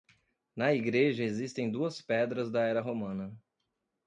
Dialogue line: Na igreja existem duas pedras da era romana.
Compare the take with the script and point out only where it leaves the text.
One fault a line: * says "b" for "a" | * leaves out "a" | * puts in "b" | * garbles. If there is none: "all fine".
all fine